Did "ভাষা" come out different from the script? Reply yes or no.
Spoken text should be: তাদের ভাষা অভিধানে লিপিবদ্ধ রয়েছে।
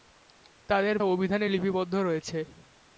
yes